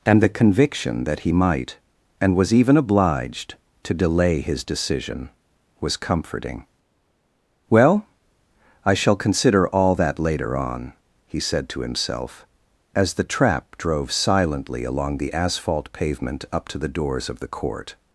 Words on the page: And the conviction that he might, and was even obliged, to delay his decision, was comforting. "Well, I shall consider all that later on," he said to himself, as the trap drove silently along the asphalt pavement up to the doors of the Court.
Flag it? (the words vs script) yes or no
no